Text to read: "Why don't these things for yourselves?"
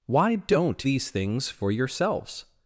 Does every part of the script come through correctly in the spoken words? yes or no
yes